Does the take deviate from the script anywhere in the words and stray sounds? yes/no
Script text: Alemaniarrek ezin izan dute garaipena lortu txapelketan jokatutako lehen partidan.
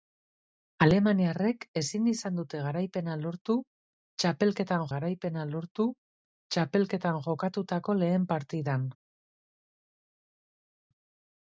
yes